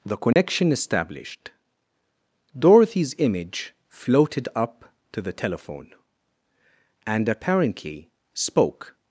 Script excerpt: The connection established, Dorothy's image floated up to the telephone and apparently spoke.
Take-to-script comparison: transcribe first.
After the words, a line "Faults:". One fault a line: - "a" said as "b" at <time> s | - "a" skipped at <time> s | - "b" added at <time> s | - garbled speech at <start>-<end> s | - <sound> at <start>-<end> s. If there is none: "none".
The connection established, Dorothy's image floated up to the telephone and apparently spoke.
Faults:
- dropout at 0.3-0.4 s